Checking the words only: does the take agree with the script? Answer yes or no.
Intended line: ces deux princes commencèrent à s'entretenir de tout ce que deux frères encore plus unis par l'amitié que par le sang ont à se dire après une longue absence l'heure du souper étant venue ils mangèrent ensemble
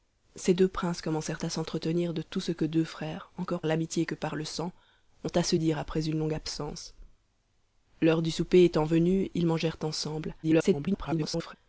no